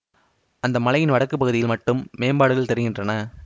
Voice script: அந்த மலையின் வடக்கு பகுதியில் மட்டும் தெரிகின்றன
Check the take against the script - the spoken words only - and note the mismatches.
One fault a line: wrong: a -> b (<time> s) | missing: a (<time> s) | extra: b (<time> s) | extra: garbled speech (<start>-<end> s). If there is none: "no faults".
extra: மேம்பாடுகள் (2.2 s)